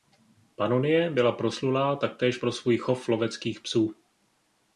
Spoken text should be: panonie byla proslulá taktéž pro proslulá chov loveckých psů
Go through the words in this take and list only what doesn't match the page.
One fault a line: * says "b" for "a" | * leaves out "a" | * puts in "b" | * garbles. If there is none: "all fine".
* says "svůj" for "proslulá"